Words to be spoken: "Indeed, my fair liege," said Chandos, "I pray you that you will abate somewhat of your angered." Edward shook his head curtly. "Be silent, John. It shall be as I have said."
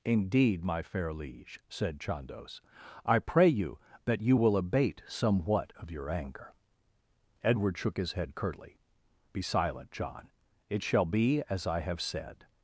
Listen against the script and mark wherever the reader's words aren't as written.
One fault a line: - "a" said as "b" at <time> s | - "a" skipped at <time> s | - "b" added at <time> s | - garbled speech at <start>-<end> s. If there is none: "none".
- "angered" said as "anger" at 6.1 s